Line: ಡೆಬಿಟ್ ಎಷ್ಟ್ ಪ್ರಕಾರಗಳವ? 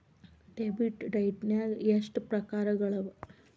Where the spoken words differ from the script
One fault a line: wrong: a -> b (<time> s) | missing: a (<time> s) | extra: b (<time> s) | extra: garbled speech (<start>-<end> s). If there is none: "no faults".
extra: ಡೈಟ್ನ್ಯಾಗ್ (1.1 s)